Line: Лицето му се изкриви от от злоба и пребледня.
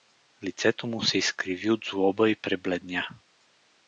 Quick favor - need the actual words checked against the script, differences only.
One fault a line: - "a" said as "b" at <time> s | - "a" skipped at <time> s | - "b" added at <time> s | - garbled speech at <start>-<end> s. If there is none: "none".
- "от" skipped at 1.9 s